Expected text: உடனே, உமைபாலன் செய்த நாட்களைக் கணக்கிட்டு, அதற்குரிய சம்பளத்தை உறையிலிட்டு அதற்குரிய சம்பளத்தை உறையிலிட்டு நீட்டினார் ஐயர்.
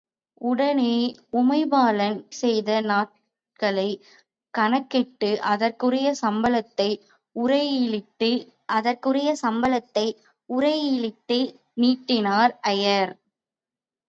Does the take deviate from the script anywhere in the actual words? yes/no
no